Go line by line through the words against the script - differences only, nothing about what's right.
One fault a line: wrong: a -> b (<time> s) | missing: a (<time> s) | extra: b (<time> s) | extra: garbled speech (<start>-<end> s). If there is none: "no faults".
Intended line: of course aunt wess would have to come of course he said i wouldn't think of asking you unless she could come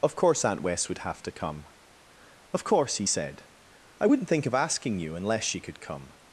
no faults